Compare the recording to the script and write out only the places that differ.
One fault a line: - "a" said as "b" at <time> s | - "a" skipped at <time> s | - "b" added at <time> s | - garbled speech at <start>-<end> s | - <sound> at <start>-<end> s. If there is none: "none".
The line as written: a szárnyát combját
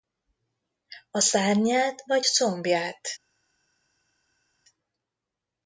- "vagy" added at 2.1 s